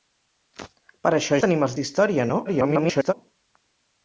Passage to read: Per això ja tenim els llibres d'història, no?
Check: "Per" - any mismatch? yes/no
no